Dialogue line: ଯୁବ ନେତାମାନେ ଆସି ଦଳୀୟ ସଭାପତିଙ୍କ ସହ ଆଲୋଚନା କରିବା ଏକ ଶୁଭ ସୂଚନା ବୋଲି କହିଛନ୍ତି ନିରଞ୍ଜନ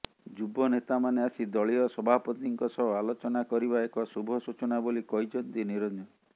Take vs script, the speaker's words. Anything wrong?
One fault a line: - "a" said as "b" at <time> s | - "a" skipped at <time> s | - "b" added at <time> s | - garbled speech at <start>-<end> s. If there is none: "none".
none